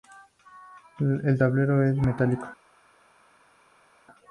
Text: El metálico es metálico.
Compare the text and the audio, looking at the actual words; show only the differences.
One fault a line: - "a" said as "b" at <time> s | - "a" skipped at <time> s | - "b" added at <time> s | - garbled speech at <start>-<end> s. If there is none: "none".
- "metálico" said as "tablero" at 1.4 s